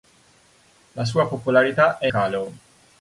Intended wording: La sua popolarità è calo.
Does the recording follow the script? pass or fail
pass